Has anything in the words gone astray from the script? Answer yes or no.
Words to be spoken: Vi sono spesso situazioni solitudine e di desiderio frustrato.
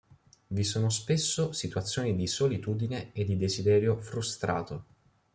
yes